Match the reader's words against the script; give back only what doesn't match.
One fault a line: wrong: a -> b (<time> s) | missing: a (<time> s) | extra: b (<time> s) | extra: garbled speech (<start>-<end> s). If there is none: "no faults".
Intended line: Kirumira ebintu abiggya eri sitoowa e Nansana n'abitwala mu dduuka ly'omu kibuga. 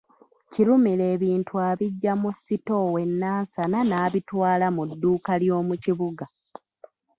wrong: eri -> mu (2.2 s)